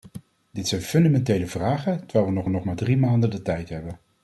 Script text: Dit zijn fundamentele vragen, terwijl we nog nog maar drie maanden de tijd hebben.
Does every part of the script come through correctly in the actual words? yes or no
yes